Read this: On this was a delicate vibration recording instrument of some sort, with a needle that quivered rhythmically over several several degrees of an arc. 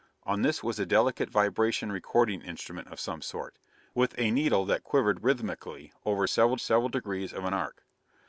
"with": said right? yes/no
yes